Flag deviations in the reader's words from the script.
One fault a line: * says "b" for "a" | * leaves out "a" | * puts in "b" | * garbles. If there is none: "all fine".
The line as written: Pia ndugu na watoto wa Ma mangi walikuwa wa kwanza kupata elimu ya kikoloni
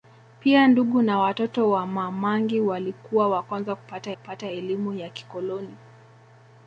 * puts in "kupata"